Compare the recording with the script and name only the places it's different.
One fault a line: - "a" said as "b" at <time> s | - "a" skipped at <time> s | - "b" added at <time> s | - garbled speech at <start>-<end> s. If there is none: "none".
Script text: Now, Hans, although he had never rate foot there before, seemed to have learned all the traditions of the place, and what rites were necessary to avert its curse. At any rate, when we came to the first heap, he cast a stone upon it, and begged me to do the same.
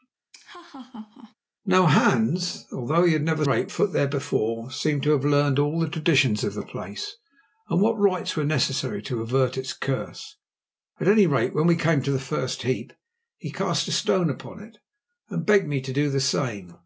none